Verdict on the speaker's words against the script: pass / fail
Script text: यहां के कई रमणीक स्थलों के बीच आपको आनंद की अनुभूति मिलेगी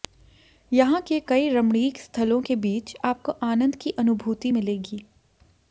pass